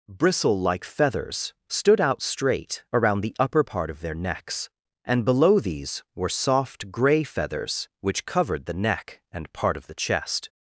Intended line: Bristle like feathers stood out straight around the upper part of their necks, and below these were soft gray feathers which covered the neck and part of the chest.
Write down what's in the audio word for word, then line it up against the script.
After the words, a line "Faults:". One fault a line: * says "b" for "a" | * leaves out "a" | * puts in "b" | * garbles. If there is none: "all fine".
Bristle like feathers stood out straight around the upper part of their necks, and below these were soft gray feathers which covered the neck and part of the chest.
Faults:
all fine